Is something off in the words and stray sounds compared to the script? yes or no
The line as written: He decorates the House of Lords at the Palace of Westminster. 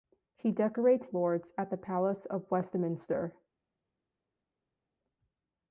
yes